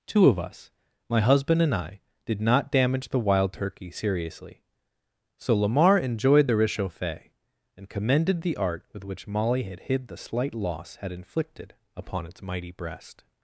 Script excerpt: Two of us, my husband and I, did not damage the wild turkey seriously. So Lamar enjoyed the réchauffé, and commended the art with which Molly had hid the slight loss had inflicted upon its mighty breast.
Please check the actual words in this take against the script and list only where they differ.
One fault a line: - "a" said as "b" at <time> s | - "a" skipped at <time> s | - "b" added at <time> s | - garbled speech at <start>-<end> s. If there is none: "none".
none